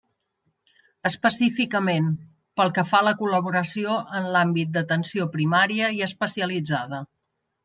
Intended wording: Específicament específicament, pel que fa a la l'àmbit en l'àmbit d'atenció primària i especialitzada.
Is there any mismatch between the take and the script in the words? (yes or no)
yes